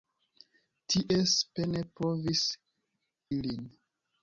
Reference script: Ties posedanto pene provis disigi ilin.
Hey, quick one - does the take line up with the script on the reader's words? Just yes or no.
no